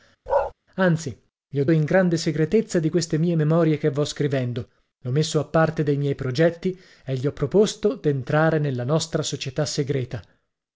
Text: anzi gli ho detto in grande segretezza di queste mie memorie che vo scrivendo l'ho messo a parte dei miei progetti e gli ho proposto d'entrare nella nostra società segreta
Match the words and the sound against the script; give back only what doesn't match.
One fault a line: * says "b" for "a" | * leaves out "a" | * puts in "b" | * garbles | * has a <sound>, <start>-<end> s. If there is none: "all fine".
* has a bark, 0.3-0.5 s
* leaves out "detto"